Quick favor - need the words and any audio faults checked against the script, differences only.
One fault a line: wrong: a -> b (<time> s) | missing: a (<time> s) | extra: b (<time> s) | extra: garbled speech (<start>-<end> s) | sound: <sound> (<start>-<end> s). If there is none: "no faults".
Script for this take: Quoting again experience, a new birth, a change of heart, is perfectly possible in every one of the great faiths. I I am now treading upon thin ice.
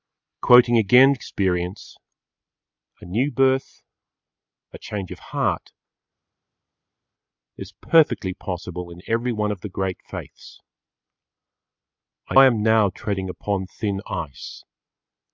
no faults